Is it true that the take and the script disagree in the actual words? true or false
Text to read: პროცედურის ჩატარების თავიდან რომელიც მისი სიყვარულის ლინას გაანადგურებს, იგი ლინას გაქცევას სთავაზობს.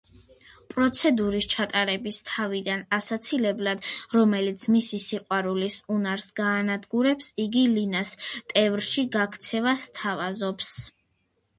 true